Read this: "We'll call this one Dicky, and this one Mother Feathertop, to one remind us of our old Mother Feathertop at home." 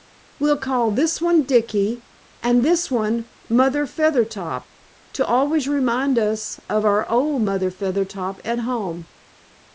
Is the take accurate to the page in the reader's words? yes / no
no